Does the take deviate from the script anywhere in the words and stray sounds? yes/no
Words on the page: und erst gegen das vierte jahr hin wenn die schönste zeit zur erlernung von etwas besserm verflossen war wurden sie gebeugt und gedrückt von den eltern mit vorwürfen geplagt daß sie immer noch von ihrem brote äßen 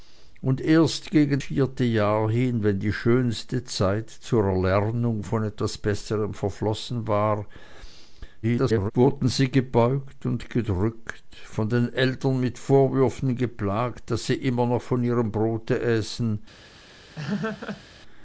yes